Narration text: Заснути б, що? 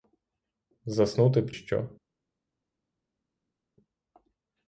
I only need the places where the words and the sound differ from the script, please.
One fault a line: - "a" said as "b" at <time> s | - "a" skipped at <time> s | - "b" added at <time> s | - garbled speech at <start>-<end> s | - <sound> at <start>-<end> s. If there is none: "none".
none